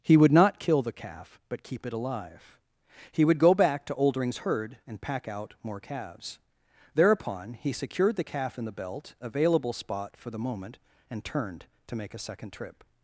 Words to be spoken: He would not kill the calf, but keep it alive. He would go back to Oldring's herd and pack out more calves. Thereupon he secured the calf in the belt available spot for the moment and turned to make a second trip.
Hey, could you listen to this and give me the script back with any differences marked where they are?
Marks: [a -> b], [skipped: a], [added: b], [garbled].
He would not kill the calf, but keep it alive. He would go back to Oldring's herd and pack out more calves. Thereupon he secured the calf in the belt available spot for the moment and turned to make a second trip.